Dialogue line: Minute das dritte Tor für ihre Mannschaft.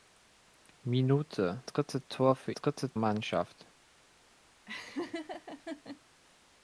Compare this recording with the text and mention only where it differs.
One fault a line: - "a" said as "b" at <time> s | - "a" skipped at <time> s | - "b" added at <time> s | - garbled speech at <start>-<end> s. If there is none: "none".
- "das" skipped at 1.6 s
- "ihre" said as "dritte" at 2.5 s